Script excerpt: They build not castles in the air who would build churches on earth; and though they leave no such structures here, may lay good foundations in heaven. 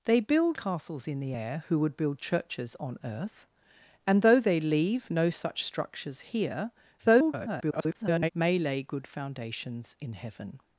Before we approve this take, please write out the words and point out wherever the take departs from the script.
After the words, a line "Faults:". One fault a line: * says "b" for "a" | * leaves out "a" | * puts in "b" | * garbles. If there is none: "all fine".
They build castles in the air who would build churches on earth; and though they leave no such structures here, [garbled] may lay good foundations in heaven.
Faults:
* leaves out "not"
* garbles